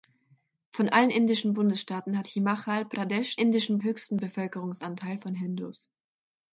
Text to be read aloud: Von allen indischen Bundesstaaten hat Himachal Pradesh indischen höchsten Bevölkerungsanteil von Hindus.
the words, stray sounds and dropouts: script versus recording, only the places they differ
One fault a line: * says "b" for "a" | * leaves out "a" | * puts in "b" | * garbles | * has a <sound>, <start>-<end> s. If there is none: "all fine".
all fine